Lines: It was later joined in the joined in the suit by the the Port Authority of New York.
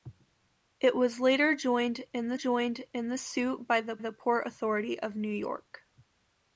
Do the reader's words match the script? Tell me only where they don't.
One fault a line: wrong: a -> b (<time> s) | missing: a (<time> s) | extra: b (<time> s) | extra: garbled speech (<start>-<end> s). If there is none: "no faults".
no faults